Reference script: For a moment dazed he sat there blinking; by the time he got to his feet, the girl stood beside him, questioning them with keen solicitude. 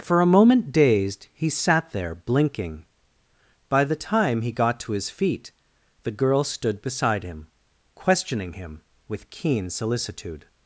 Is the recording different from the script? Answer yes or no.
yes